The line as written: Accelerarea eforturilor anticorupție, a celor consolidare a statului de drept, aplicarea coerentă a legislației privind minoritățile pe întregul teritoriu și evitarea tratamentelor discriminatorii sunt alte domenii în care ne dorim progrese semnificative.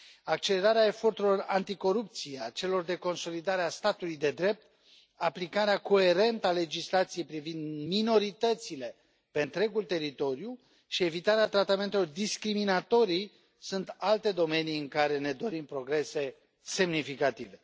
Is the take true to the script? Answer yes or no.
no